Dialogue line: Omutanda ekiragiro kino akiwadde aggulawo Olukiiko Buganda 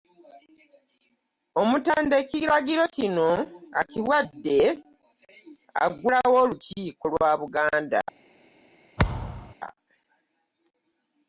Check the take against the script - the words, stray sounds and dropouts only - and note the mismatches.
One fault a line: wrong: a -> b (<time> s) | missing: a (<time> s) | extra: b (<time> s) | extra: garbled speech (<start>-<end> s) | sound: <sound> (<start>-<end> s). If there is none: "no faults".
extra: lwa (7.1 s)
sound: thud (9.0-9.5 s)